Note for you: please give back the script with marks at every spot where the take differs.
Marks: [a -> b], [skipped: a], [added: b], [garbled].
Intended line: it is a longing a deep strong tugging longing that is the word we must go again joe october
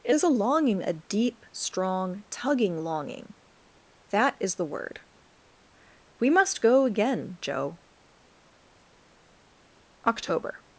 it is a longing a deep strong tugging longing that is the word we must go again joe october